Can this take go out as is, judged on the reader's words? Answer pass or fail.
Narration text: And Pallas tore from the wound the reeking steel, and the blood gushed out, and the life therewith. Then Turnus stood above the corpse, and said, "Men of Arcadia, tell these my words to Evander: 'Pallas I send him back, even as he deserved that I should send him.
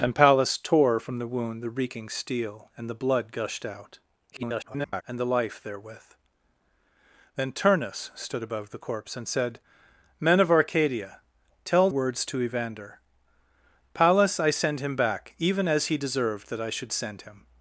fail